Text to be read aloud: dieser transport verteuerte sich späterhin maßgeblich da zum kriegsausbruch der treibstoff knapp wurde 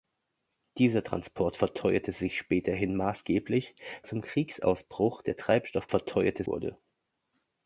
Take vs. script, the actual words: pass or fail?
fail